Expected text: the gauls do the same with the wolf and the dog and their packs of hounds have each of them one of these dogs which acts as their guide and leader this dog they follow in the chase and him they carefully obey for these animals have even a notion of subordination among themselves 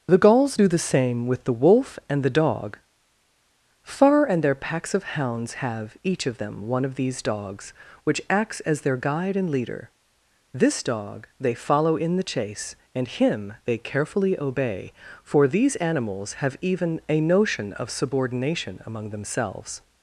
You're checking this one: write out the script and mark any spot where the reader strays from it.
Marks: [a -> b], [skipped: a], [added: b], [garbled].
the gauls do the same with the wolf and the dog [added: far] and their packs of hounds have each of them one of these dogs which acts as their guide and leader this dog they follow in the chase and him they carefully obey for these animals have even a notion of subordination among themselves